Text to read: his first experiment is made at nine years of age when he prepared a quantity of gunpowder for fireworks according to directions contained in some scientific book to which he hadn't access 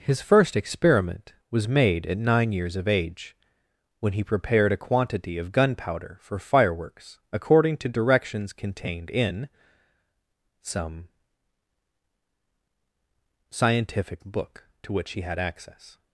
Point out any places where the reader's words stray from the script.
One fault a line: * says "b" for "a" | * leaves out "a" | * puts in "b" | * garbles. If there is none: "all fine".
* says "was" for "is"
* says "had" for "hadn't"